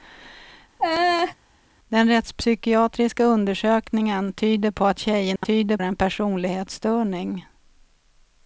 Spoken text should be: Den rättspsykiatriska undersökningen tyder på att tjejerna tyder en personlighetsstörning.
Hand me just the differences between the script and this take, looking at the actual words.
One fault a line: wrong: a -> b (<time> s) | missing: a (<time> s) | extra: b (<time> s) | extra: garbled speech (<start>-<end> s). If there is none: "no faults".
no faults